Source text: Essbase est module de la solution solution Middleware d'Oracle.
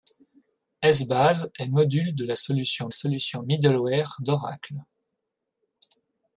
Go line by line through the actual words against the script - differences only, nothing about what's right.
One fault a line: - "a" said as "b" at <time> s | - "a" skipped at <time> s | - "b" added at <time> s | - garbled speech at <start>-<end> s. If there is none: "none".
none